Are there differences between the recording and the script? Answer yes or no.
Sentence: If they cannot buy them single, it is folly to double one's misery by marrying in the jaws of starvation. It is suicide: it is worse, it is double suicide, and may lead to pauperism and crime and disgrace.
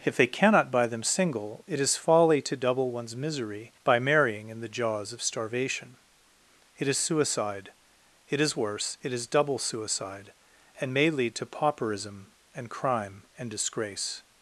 no